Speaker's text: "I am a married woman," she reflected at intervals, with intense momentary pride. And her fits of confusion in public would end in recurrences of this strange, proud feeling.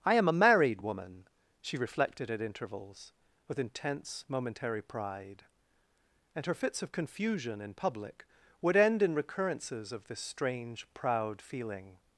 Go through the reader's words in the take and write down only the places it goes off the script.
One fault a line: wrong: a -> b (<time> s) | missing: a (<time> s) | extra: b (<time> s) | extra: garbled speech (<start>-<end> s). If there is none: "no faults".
no faults